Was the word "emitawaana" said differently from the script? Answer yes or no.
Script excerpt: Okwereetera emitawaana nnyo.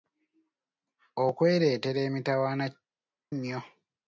no